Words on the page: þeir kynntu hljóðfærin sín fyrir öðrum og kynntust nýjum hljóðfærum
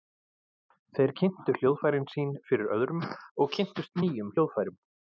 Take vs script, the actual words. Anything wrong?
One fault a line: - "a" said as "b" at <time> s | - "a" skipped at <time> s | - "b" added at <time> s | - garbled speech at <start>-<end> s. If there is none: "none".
none